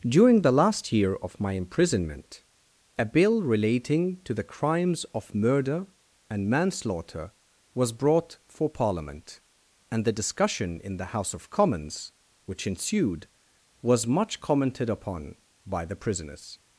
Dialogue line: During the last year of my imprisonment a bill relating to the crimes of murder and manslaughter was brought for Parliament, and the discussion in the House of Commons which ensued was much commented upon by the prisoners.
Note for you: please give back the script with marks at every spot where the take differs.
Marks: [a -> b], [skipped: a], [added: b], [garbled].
During the last year of my imprisonment a bill relating to the crimes of murder and manslaughter was brought for Parliament, and the discussion in the House of Commons which ensued was much commented upon by the prisoners.